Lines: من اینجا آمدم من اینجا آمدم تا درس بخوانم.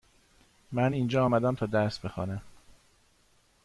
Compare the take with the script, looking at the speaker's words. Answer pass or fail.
fail